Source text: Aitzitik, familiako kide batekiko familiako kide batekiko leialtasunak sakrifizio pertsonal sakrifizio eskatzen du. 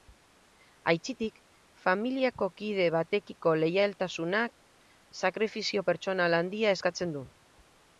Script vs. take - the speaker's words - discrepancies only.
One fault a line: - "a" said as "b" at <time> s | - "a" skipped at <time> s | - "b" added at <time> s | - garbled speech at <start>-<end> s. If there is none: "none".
- "familiako kide batekiko" skipped at 3.5 s
- "sakrifizio" said as "handia" at 6.4 s